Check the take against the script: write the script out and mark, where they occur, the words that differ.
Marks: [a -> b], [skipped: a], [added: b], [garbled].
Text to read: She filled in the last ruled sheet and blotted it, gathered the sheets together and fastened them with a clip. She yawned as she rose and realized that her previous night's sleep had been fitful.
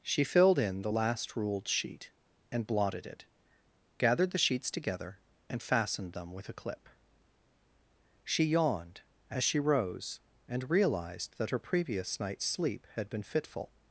She filled in the last ruled sheet and blotted it, gathered the sheets together and fastened them with a clip. She yawned as she rose and realized that her previous night's sleep had been fitful.